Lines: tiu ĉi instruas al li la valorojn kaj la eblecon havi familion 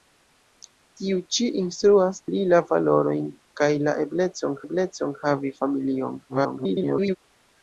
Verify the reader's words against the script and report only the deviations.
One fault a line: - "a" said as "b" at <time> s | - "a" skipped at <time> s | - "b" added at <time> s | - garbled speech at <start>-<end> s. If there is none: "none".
- "al" skipped at 2.2 s
- "eblecon" added at 4.7 s
- garbled speech at 6.3-7.2 s